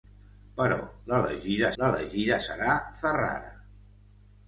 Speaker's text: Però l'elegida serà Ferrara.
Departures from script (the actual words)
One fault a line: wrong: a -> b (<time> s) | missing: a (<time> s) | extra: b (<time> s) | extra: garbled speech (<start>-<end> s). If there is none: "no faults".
extra: l'elegida (1.8 s)